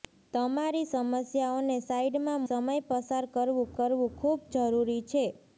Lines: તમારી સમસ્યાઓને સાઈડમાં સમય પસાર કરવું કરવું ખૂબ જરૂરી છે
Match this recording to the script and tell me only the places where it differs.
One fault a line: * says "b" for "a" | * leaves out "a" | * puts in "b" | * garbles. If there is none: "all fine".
all fine